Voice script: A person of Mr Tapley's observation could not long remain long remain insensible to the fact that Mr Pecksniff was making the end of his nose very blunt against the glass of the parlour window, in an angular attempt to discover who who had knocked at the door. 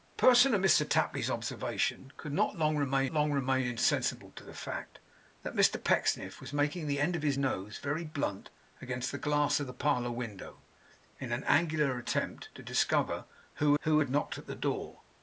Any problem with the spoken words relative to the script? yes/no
no